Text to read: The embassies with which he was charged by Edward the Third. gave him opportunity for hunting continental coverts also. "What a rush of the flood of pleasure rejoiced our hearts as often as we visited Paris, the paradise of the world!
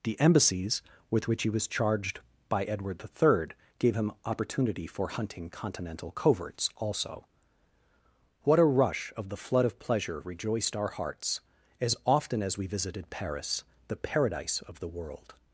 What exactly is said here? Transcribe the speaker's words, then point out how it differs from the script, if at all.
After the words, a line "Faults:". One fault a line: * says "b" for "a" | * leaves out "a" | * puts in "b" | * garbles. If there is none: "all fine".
The embassies with which he was charged by Edward the Third. gave him opportunity for hunting continental coverts also. "What a rush of the flood of pleasure rejoiced our hearts as often as we visited Paris, the paradise of the world!
Faults:
all fine